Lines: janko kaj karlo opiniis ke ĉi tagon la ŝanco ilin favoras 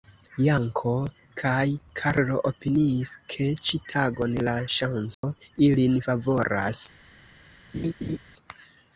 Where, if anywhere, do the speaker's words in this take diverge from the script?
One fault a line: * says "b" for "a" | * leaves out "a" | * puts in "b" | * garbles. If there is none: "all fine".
all fine